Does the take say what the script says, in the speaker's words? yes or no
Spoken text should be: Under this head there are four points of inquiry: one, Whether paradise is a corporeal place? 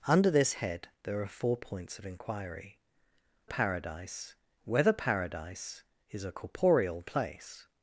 no